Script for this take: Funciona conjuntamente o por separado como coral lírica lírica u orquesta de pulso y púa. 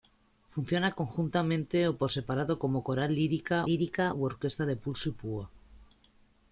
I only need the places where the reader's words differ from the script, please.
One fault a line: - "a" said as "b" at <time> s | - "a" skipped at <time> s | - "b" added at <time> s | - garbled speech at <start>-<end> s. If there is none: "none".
none